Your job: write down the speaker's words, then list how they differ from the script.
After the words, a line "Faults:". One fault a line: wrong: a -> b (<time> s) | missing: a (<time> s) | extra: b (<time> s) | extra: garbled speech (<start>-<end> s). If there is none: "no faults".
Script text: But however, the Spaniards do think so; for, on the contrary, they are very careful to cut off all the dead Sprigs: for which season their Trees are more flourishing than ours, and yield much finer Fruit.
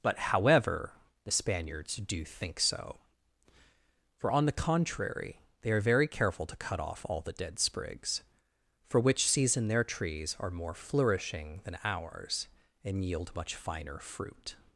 But however, the Spaniards do think so; for, on the contrary, they are very careful to cut off all the dead Sprigs: for which season their Trees are more flourishing than ours, and yield much finer Fruit.
Faults:
no faults